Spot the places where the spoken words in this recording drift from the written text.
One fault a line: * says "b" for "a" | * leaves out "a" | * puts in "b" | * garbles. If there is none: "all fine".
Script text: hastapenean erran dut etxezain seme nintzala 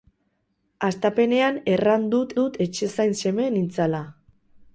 * puts in "dut"